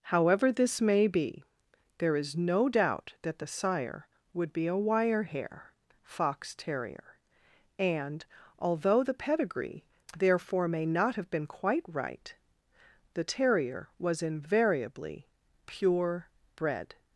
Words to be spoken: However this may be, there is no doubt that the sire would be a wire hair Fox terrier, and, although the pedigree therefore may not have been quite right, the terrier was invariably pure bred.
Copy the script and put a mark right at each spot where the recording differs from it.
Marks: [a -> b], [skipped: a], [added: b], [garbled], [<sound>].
However this may be, there is no doubt that the sire would be a wire hair Fox terrier, and, although the pedigree therefore may not have been quite right, the terrier was invariably pure bred.